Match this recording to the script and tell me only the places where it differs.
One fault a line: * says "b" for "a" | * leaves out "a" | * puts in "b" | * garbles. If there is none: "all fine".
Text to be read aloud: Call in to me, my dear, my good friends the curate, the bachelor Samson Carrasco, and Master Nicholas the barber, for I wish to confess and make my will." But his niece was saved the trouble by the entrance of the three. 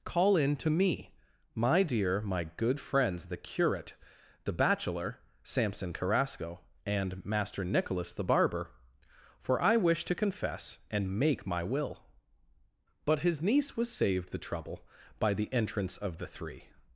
all fine